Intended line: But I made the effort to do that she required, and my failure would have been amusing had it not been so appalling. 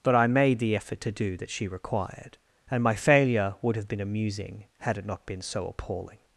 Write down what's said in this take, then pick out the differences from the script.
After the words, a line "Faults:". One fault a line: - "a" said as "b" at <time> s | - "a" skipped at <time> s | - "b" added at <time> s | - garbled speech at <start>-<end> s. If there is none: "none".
But I made the effort to do that she required, and my failure would have been amusing had it not been so appalling.
Faults:
none